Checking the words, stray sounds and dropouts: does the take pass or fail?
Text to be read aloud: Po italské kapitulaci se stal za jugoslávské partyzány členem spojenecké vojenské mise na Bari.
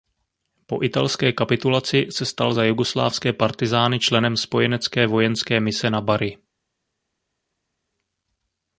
pass